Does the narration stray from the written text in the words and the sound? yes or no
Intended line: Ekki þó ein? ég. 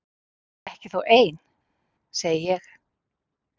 yes